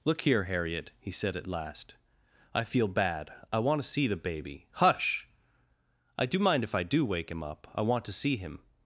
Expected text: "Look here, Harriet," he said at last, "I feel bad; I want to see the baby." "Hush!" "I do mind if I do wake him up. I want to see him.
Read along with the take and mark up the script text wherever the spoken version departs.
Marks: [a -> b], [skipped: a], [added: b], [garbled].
"Look here, Harriet," he said at last, "I feel bad; I want to see the baby." "Hush!" "I do mind if I do wake him up. I want to see him.